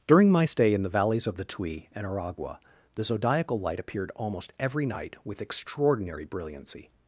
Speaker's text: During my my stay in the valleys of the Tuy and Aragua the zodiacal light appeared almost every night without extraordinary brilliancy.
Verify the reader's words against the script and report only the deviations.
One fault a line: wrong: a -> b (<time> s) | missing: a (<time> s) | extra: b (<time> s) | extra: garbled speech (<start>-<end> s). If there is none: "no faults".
missing: my (0.5 s)
wrong: without -> with (5.2 s)